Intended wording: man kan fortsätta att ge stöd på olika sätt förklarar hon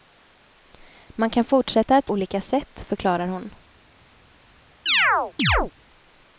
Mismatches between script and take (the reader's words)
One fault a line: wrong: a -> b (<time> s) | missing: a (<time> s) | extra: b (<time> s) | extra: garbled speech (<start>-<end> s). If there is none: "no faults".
missing: ge stöd på (2.1 s)